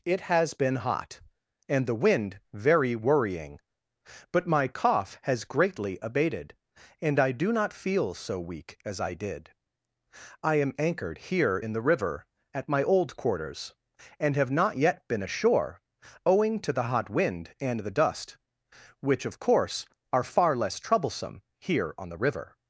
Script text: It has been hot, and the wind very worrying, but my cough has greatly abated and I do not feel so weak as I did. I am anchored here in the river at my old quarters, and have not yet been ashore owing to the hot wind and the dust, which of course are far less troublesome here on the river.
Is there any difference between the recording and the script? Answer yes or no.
no